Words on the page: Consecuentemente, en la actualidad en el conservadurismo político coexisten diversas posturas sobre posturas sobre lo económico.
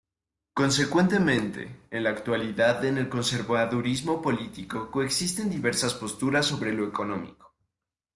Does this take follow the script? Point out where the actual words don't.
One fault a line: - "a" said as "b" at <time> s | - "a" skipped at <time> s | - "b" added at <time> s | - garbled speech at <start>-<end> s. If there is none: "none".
- "posturas sobre" skipped at 6.7 s